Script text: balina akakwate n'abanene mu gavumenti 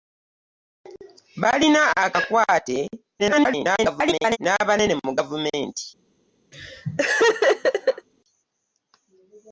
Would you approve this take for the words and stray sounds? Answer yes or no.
no